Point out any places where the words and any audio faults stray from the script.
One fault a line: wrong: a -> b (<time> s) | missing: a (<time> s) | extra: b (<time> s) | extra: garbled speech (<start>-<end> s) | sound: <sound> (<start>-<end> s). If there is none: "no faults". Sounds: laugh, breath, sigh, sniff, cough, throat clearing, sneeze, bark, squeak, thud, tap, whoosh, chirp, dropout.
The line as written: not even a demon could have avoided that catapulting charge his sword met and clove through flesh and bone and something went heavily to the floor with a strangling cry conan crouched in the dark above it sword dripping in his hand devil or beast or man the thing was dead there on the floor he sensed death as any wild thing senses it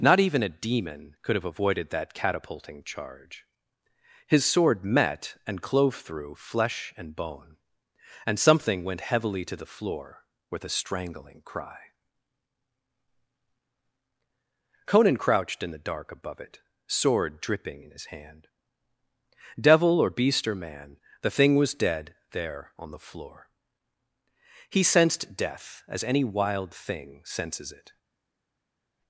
no faults